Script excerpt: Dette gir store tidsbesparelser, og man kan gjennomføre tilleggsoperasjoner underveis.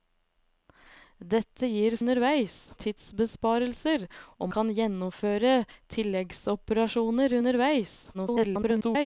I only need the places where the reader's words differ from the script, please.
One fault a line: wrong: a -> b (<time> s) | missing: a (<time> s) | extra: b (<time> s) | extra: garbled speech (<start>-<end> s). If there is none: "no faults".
wrong: store -> underveis (2.0 s)
missing: man (4.5 s)
extra: garbled speech (8.1-9.1 s)